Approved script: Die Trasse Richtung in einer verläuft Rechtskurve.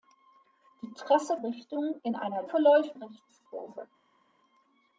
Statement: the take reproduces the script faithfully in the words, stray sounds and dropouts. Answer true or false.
true